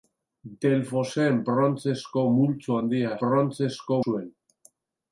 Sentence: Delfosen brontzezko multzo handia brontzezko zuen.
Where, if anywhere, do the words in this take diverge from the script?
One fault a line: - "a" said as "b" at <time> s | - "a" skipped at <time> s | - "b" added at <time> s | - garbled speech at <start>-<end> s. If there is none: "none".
none